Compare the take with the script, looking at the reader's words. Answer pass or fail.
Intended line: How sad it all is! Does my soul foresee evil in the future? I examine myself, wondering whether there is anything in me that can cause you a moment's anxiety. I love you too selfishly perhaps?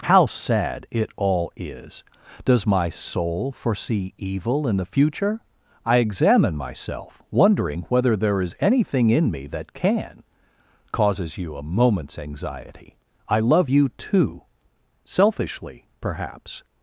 fail